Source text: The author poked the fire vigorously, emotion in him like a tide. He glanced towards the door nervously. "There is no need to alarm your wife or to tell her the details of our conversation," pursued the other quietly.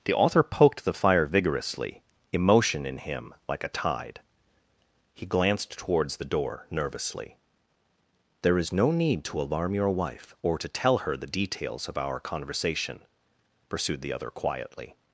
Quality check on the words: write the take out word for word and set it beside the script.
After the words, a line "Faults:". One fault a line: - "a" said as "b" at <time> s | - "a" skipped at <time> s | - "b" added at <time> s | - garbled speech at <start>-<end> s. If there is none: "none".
The author poked the fire vigorously, emotion in him like a tide. He glanced towards the door nervously. "There is no need to alarm your wife or to tell her the details of our conversation," pursued the other quietly.
Faults:
none